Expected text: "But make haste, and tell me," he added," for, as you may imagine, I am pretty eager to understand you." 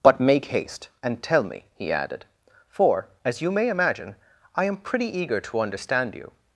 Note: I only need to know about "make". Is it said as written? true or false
true